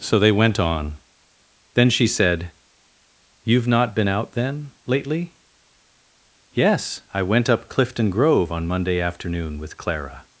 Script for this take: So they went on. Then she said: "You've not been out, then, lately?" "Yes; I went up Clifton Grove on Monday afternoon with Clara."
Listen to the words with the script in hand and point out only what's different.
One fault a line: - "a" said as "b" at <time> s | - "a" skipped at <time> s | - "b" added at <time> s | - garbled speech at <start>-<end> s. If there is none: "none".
none